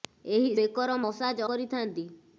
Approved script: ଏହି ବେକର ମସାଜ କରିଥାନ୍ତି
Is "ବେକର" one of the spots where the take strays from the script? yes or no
no